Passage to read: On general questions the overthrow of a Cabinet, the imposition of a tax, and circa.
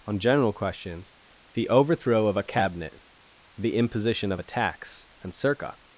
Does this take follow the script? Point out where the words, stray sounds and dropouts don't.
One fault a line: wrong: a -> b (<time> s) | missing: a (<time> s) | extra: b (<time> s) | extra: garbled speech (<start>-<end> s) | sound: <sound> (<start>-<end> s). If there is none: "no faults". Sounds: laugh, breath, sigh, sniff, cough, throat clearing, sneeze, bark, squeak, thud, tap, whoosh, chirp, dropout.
no faults